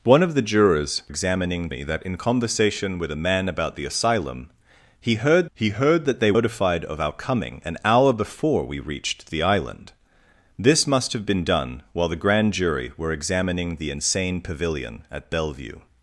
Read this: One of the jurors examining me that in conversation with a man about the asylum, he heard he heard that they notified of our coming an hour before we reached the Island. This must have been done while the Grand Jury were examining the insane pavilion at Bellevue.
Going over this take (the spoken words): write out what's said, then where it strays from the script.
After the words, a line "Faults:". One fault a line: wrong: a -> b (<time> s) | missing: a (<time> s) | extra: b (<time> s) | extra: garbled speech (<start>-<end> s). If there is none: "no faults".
One of the jurors examining me that in conversation with a man about the asylum, he heard he heard that they notified of our coming an hour before we reached the Island. This must have been done while the Grand Jury were examining the insane pavilion at Bellevue.
Faults:
no faults